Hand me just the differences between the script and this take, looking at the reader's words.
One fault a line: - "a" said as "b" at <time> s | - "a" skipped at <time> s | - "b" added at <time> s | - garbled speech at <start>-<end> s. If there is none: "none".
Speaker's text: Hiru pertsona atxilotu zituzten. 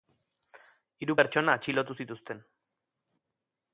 none